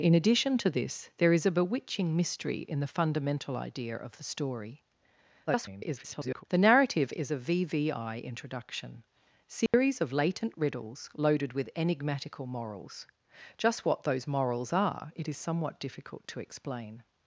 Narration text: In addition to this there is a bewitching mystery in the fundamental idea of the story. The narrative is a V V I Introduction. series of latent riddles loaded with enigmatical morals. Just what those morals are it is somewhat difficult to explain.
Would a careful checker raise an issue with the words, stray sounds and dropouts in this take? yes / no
yes